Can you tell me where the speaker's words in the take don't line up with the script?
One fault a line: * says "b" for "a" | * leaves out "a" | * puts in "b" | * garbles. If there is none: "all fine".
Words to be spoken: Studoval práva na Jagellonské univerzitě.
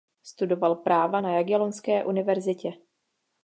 all fine